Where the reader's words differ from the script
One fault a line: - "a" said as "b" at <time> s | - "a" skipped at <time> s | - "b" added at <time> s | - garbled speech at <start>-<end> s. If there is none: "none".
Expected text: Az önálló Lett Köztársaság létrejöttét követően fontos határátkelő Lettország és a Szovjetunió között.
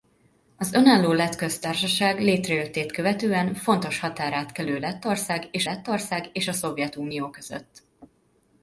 - "Lettország és" added at 5.6 s